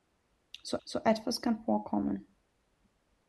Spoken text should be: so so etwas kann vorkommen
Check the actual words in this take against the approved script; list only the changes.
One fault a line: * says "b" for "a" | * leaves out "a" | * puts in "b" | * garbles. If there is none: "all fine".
all fine